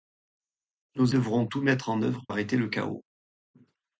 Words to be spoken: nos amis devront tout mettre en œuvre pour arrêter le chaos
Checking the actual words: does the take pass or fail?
fail